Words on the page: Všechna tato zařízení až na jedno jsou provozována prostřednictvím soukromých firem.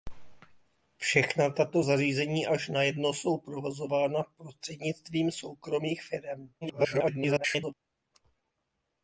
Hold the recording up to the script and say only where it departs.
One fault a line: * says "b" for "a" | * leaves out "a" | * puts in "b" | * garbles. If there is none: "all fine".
* garbles